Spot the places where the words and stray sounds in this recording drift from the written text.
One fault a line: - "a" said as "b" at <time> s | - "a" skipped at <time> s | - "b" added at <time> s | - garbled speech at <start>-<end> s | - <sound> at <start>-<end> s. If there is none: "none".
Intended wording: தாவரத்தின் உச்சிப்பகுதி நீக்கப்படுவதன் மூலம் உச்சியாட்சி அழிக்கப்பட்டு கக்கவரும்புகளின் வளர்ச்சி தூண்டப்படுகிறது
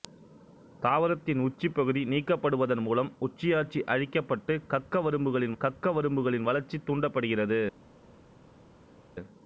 - "கக்கவரும்புகளின்" added at 5.6 s